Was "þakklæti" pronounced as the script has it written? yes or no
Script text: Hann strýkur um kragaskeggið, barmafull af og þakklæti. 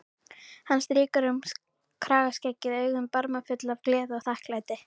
yes